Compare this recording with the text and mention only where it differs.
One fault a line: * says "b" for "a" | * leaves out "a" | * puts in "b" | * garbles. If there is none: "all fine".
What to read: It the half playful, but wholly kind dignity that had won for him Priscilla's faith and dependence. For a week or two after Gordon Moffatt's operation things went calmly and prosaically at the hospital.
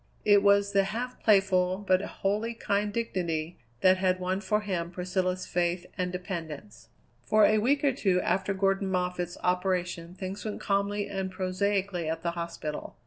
* puts in "was"